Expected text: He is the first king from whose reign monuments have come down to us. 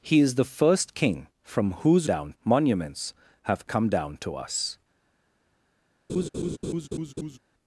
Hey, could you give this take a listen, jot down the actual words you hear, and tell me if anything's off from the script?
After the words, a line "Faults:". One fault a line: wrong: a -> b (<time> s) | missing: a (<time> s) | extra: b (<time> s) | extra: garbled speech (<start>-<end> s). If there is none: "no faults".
He is the first king from whose down monuments have come down to us.
Faults:
wrong: reign -> down (2.0 s)